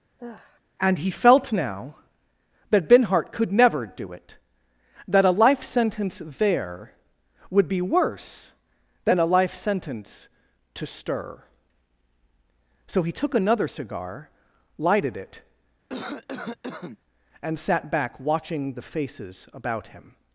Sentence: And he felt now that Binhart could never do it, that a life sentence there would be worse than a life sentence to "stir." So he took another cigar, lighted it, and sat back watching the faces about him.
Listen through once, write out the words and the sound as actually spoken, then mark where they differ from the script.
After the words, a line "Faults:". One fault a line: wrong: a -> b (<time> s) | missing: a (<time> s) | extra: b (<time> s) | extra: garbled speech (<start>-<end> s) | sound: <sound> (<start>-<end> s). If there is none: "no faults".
And he felt now that Binhart could never do it, that a life sentence there would be worse than a life sentence to "stir." So he took another cigar, lighted it, and sat back watching the faces about him.
Faults:
sound: sigh (0.2-0.6 s)
sound: cough (15.9-17.0 s)